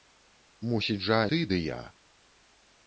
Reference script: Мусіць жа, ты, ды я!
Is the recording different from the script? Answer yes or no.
no